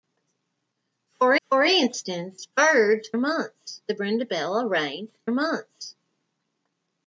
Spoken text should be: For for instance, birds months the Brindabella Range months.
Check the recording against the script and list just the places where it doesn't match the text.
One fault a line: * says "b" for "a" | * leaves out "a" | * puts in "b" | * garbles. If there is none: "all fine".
all fine